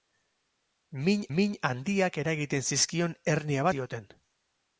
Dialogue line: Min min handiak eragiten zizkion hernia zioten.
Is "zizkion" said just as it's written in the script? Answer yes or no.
yes